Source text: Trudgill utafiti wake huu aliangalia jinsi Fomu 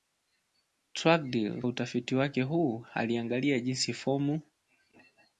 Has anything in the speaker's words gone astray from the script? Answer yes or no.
no